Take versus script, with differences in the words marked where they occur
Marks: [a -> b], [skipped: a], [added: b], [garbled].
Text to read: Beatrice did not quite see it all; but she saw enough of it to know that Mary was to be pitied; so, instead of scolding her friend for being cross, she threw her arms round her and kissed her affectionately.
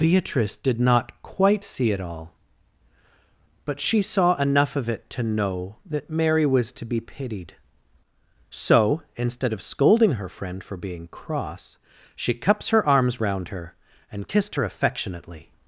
Beatrice did not quite see it all; but she saw enough of it to know that Mary was to be pitied; so, instead of scolding her friend for being cross, she [threw -> cups] her arms round her and kissed her affectionately.